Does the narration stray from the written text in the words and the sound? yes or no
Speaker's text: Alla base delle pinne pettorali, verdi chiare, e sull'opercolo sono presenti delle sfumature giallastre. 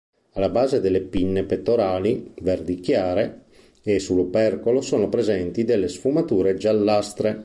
no